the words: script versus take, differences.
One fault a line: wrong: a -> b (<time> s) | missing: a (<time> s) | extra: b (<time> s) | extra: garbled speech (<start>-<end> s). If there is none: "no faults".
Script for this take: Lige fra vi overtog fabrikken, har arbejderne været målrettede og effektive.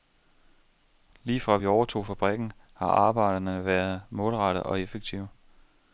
no faults